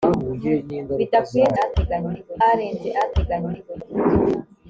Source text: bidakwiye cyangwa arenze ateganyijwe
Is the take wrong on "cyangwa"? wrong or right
wrong